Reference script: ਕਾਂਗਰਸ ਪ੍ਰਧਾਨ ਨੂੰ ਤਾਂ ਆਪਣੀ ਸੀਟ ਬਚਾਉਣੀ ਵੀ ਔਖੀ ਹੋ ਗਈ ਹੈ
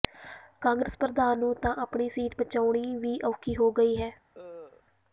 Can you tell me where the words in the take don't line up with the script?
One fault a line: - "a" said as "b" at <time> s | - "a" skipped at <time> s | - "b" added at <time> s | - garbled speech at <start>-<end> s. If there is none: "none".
none